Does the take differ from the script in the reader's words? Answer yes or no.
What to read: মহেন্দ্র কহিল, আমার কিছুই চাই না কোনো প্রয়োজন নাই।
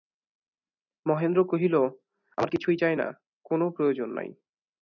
no